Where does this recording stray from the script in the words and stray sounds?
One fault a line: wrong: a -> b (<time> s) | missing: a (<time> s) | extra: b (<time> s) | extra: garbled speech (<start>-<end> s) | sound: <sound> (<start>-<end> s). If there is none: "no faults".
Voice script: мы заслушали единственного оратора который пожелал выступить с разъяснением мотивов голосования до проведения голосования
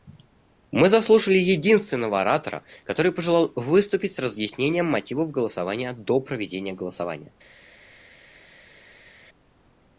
no faults